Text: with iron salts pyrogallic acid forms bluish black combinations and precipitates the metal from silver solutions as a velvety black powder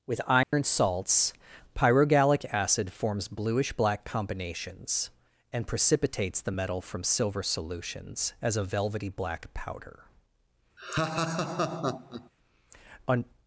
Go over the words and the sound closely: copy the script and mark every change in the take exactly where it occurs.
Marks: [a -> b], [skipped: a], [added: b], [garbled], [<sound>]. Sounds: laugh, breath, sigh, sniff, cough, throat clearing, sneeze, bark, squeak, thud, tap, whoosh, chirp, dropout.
with iron [dropout] salts pyrogallic acid forms bluish black combinations and precipitates the metal from silver solutions as a velvety black powder [laugh] [added: on]